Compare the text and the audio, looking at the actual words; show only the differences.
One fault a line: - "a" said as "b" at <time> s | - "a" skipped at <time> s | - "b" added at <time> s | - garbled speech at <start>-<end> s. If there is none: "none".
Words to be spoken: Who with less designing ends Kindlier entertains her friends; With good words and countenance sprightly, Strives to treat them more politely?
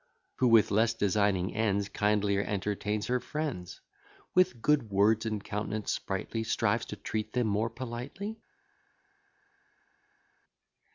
none